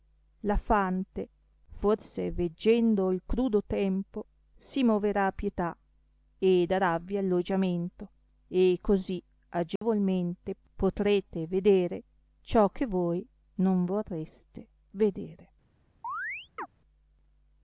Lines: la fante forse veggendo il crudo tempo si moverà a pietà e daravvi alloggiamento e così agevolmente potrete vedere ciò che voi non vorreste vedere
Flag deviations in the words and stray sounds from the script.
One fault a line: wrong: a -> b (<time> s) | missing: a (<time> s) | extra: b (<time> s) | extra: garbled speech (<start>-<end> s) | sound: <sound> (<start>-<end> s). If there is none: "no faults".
sound: dropout (9.8-9.8 s)
sound: chirp (16.0-16.7 s)